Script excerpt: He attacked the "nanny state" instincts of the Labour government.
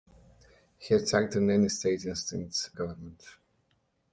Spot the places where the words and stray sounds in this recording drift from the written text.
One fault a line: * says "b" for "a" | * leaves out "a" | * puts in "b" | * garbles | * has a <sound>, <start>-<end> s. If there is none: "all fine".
* leaves out "of the Labour"